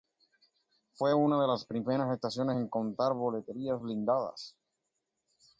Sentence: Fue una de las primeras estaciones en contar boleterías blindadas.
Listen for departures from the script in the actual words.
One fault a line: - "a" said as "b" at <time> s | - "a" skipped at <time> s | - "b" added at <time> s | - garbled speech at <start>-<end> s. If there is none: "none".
none